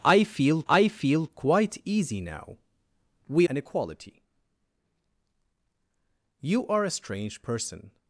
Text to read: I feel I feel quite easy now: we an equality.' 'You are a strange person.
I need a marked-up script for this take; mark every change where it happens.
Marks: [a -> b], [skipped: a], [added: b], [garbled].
I feel I feel quite easy now: we an equality.' 'You are a strange person.